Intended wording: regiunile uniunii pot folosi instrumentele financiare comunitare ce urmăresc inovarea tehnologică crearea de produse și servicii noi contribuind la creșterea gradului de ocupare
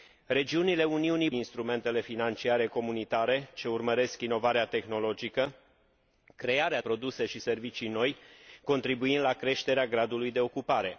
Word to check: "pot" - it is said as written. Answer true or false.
false